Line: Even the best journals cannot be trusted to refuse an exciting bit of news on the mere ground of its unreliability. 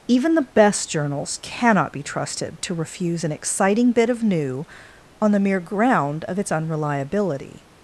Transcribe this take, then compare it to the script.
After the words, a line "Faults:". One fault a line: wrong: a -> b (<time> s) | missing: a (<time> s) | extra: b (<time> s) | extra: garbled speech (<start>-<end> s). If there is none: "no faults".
Even the best journals cannot be trusted to refuse an exciting bit of new on the mere ground of its unreliability.
Faults:
wrong: news -> new (4.2 s)